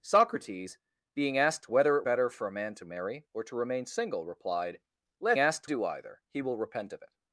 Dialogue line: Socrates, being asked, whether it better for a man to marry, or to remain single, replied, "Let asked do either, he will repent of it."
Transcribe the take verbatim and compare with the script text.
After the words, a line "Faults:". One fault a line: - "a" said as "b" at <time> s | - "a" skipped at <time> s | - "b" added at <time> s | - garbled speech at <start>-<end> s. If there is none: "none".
Socrates, being asked, whether it better for a man to marry, or to remain single, replied, "Let asked do either, he will repent of it."
Faults:
none